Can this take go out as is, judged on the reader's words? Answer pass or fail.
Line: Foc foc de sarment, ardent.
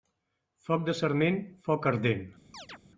fail